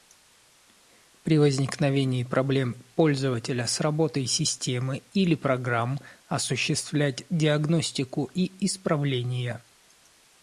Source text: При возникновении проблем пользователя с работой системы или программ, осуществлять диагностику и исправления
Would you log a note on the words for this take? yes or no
no